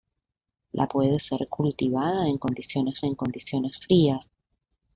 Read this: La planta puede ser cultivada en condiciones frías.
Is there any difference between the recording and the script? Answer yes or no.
yes